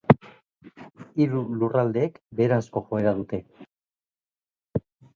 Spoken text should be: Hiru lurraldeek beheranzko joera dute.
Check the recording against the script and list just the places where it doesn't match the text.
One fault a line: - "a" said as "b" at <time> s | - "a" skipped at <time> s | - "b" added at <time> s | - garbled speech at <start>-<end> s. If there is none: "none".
none